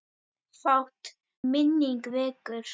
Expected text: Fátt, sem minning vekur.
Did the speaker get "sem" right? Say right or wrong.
wrong